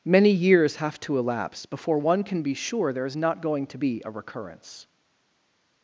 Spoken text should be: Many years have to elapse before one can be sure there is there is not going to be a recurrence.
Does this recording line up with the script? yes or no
no